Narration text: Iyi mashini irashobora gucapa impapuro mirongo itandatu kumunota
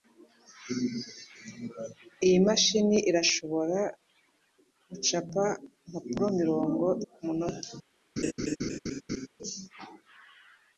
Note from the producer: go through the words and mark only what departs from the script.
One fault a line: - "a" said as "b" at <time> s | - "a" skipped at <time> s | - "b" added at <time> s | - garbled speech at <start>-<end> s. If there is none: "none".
- "itandatu" skipped at 6.8 s